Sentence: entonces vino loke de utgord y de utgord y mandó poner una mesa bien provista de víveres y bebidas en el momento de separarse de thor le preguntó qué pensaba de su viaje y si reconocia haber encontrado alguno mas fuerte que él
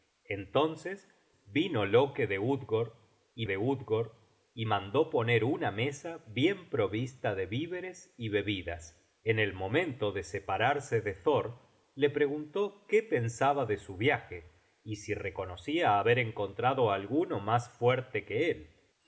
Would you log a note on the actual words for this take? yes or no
no